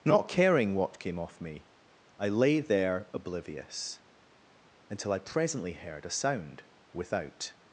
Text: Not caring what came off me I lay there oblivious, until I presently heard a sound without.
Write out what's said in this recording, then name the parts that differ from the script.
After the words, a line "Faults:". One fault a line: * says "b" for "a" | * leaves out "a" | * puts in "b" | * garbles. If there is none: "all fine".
Not caring what came off me I lay there oblivious, until I presently heard a sound without.
Faults:
all fine